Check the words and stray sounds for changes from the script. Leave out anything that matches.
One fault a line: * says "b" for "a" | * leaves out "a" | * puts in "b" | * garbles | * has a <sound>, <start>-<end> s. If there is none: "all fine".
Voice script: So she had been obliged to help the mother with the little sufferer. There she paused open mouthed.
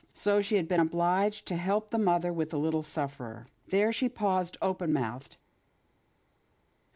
all fine